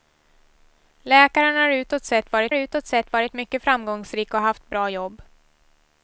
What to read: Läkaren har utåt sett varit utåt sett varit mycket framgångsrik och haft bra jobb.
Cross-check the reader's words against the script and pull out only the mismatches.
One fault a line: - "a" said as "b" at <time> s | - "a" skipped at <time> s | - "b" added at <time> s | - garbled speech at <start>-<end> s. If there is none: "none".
none